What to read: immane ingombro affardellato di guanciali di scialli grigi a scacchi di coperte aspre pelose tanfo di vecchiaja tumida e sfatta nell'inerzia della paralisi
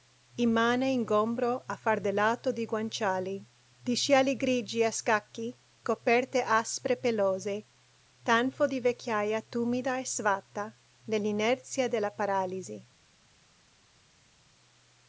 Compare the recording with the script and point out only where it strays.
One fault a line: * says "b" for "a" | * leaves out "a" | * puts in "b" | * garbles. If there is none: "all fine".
* leaves out "di"